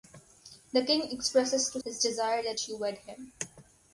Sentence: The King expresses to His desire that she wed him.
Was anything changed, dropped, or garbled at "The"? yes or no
no